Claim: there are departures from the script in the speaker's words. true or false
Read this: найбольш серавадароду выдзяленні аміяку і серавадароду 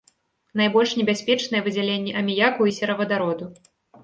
true